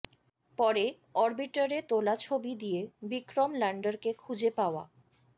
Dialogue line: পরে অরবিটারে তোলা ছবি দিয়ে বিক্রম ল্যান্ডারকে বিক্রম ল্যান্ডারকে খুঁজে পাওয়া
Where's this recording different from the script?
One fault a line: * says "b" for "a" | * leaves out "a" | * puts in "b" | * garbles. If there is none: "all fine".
* leaves out "বিক্রম ল্যান্ডারকে"